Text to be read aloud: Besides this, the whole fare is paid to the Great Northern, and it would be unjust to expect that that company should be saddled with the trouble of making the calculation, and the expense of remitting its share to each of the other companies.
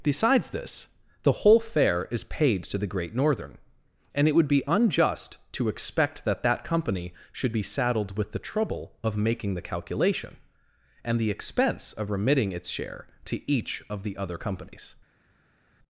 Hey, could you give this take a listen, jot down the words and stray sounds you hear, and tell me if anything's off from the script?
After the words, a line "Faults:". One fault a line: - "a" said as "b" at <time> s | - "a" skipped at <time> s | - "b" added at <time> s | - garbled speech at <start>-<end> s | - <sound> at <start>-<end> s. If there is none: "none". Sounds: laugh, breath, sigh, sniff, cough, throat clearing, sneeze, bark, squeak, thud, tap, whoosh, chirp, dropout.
Besides this, the whole fare is paid to the Great Northern, and it would be unjust to expect that that company should be saddled with the trouble of making the calculation, and the expense of remitting its share to each of the other companies.
Faults:
none